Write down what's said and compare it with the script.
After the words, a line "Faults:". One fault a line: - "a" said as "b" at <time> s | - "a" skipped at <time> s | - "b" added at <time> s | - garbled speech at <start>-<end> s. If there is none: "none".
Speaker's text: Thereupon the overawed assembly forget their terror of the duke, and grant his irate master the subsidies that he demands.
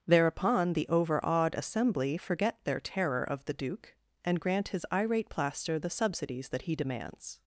Thereupon the overawed assembly forget their terror of the duke, and grant his irate plaster the subsidies that he demands.
Faults:
- "master" said as "plaster" at 5.3 s